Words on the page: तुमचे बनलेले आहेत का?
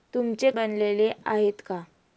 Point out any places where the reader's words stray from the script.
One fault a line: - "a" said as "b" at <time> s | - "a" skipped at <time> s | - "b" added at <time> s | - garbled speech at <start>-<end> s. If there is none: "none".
none